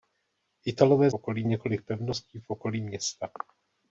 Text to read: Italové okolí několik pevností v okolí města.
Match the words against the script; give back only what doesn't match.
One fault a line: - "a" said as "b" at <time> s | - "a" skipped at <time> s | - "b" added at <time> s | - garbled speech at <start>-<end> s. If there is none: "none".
none